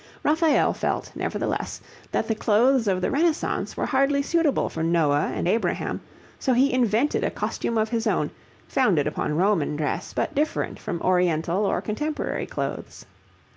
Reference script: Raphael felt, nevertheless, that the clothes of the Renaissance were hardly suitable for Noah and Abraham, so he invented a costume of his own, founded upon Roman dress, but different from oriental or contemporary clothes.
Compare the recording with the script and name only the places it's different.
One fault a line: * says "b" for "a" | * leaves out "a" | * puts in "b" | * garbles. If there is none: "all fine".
all fine